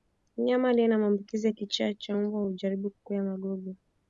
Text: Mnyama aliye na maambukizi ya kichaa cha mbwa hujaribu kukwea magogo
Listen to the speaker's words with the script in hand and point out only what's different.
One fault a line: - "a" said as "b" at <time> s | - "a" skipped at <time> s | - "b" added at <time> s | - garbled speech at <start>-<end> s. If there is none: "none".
none